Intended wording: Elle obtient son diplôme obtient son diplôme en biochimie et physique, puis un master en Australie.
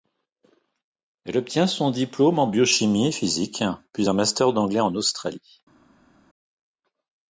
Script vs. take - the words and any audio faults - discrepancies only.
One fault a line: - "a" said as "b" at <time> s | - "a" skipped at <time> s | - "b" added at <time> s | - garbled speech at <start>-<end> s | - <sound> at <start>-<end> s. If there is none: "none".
- "obtient son diplôme" skipped at 2.4 s
- "d'anglais" added at 4.5 s